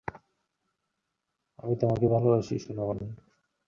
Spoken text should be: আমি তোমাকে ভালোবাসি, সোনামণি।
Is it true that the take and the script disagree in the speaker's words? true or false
false